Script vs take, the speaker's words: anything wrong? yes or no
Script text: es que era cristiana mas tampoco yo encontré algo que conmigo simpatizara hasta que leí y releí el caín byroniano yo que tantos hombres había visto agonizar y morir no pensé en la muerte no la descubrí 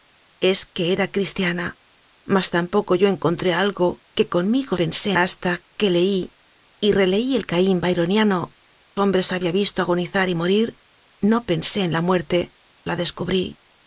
yes